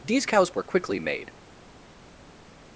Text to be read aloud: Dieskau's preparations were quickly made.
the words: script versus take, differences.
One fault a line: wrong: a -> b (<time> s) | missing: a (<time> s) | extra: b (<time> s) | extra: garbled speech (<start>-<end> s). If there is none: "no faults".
missing: preparations (0.5 s)